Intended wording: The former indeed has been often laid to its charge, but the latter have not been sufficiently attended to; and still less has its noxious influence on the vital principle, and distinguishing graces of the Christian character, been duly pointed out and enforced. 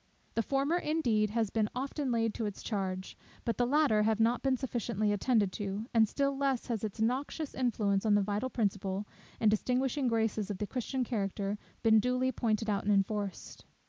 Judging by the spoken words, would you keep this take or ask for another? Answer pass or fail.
pass